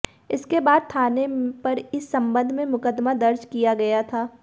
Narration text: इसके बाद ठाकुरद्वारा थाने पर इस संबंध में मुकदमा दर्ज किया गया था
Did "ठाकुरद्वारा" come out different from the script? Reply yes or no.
yes